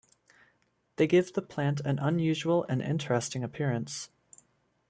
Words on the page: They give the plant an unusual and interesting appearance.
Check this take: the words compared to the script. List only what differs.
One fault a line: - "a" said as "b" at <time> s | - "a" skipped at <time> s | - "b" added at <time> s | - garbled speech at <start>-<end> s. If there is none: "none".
none